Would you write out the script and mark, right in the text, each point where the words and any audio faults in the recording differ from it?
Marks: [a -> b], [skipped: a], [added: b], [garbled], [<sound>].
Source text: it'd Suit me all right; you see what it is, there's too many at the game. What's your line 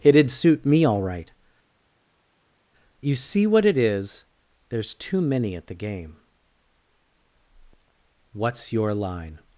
it'd Suit me all right; you see what it is, there's too many at the game. What's your line